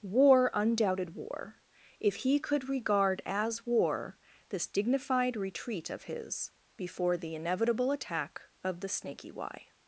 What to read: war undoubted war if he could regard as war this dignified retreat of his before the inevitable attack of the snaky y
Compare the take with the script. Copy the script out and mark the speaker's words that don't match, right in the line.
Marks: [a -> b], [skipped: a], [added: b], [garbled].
war undoubted war if he could regard as war this dignified retreat of his before the inevitable attack of the snaky y